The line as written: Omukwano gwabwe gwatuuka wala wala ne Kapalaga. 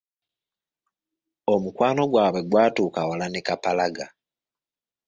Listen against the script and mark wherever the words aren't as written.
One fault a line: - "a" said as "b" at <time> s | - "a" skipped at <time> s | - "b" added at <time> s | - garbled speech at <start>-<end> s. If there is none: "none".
- "wala" skipped at 3.2 s